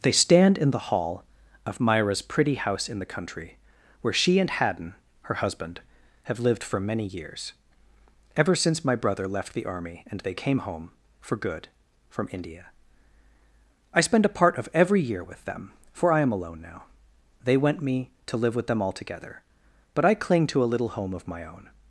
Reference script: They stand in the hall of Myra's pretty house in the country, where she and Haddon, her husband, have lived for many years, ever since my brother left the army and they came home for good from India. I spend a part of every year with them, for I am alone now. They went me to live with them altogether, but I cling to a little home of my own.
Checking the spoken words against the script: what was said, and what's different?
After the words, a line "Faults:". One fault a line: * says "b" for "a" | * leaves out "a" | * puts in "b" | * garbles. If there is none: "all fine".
They stand in the hall of Myra's pretty house in the country, where she and Haddon, her husband, have lived for many years, ever since my brother left the army and they came home for good from India. I spend a part of every year with them, for I am alone now. They went me to live with them altogether, but I cling to a little home of my own.
Faults:
all fine